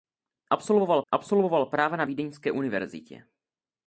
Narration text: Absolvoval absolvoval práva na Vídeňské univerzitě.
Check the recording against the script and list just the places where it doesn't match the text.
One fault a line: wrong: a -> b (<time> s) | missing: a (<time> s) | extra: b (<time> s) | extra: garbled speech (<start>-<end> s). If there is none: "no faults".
no faults